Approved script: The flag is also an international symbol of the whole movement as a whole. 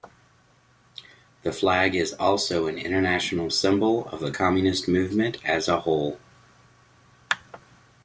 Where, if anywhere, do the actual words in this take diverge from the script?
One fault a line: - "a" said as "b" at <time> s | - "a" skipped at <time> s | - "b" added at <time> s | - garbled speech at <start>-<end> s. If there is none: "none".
- "whole" said as "communist" at 4.3 s